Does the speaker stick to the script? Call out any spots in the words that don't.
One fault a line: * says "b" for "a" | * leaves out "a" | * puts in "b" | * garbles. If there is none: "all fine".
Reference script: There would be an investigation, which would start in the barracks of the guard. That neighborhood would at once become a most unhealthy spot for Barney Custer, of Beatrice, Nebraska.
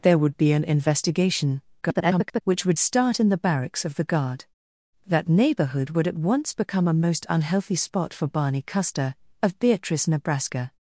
* garbles